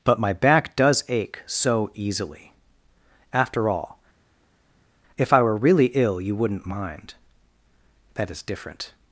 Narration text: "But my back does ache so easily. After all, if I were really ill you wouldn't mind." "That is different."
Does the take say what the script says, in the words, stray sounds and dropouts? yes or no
yes